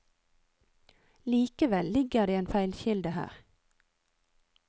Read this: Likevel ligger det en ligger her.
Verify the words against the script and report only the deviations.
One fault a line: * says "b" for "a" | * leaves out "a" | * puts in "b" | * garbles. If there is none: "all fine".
* says "feilkilde" for "ligger"